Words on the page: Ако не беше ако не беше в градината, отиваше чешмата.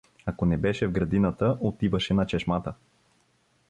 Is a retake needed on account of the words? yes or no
yes